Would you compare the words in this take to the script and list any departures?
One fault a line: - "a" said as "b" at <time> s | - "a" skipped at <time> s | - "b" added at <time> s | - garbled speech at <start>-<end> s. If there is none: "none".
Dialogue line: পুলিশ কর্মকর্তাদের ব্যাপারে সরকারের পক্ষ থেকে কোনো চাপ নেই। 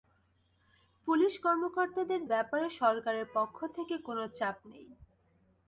none